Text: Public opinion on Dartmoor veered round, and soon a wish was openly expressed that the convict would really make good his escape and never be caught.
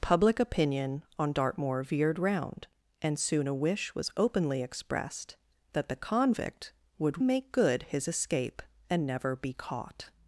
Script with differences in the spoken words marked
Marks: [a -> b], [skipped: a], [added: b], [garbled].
Public opinion on Dartmoor veered round, and soon a wish was openly expressed that the convict would [skipped: really] make good his escape and never be caught.